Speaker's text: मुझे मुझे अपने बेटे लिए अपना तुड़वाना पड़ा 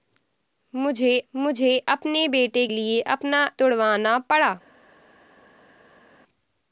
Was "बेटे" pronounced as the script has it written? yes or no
yes